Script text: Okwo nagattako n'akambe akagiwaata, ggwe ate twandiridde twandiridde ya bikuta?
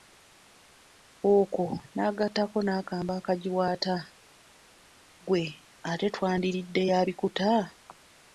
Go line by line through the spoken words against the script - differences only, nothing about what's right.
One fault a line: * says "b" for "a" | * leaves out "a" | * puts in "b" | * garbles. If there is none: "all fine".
* leaves out "twandiridde"